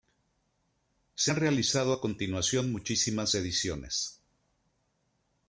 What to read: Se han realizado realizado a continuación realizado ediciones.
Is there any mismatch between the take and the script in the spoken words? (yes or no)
yes